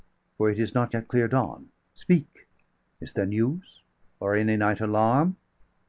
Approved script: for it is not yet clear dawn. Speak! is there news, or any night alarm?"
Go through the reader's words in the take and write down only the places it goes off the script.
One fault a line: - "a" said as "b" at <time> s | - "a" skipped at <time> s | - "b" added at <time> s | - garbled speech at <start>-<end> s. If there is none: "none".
none